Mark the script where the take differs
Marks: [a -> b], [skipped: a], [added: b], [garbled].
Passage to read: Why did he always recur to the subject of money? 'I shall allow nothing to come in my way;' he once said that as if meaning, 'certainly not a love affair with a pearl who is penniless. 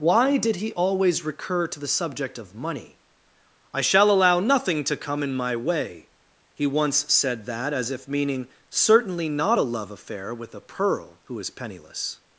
Why did he always recur to the subject of money? 'I shall allow nothing to come in my way;' he once said that as if meaning, 'certainly not a love affair with a pearl who is penniless.